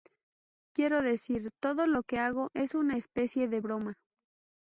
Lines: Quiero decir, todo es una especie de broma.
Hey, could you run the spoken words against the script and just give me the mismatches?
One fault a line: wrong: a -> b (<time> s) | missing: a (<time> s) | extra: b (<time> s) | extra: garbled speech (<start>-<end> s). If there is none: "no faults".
extra: lo que hago (1.9 s)